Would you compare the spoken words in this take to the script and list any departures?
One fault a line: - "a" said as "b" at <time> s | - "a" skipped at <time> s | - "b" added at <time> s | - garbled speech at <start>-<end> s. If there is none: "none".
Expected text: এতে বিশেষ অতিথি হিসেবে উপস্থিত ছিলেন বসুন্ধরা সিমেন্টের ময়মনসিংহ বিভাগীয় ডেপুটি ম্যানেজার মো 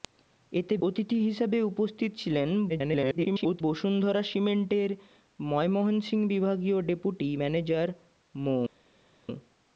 - "বিশেষ" skipped at 0.8 s
- garbled speech at 2.7-3.6 s